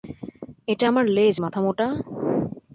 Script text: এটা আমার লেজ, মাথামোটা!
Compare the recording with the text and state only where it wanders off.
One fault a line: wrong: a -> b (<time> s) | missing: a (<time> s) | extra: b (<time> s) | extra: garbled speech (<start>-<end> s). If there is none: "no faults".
no faults